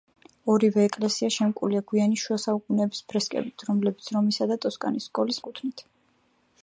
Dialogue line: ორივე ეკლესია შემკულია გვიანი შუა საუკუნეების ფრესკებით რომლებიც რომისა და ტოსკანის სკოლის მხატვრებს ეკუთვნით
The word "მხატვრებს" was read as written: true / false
false